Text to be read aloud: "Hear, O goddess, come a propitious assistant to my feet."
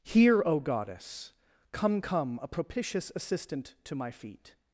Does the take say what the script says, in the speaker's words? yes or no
no